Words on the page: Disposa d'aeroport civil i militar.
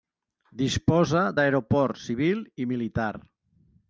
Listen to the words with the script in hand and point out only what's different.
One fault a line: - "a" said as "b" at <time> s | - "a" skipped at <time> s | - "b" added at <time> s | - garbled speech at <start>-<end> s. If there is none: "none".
none